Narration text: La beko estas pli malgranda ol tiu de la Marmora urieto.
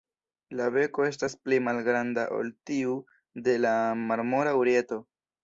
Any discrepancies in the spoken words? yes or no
no